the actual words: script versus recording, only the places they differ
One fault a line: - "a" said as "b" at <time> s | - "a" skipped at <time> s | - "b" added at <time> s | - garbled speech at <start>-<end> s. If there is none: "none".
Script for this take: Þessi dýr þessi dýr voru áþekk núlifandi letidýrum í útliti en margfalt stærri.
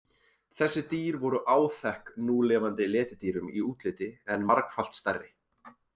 - "þessi dýr" skipped at 1.2 s